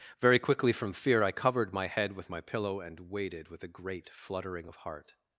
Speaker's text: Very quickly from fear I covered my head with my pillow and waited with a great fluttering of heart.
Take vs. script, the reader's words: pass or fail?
pass